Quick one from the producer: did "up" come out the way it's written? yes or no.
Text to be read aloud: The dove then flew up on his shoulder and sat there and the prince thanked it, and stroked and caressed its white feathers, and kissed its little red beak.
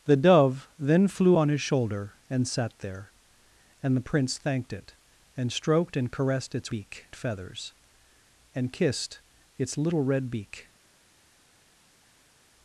no